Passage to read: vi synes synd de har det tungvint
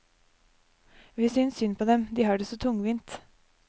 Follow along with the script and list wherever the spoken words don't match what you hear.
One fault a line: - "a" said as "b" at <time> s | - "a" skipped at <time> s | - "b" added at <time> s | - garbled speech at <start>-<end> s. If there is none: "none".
- "på dem" added at 1.7 s
- "så" added at 2.4 s